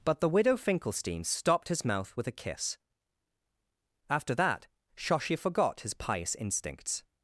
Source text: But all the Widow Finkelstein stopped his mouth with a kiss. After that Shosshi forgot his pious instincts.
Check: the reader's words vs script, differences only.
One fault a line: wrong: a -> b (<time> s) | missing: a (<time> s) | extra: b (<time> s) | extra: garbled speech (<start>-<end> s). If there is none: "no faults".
missing: all (0.2 s)